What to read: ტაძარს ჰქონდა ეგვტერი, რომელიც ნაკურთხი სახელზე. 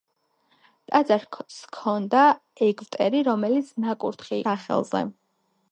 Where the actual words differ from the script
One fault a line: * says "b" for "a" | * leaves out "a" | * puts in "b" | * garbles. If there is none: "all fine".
all fine